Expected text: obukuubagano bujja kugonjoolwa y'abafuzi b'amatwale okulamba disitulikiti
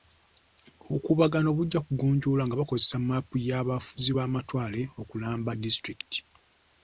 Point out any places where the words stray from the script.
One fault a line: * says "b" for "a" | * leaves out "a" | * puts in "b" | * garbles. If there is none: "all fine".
* puts in "nga bakozesa mmaapu"